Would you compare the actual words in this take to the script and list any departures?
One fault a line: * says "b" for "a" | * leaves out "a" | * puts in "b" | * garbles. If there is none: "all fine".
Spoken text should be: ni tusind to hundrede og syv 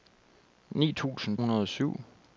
* leaves out "to"